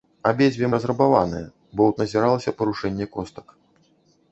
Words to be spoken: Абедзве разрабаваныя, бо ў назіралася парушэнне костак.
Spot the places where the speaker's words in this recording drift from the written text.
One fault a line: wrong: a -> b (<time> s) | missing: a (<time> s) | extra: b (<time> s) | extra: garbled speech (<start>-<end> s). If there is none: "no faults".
no faults